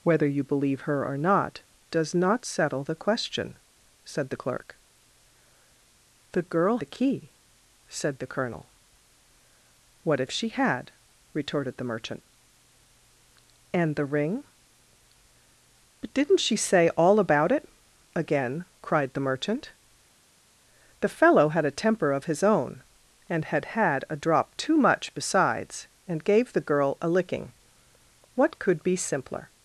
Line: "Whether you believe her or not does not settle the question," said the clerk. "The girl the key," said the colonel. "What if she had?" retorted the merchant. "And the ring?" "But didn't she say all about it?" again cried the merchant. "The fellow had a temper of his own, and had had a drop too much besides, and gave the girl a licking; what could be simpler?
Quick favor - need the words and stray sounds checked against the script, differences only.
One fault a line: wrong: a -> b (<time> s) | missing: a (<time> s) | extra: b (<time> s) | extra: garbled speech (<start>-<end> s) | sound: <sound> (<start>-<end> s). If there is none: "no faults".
no faults